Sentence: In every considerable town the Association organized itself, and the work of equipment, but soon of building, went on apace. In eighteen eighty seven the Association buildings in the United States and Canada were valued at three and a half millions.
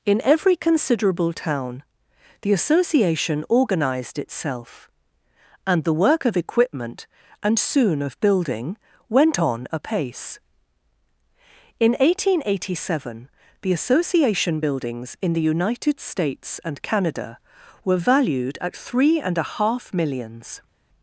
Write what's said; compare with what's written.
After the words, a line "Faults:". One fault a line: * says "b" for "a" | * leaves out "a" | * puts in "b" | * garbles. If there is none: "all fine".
In every considerable town the Association organized itself, and the work of equipment, and soon of building, went on apace. In eighteen eighty seven the Association buildings in the United States and Canada were valued at three and a half millions.
Faults:
* says "and" for "but"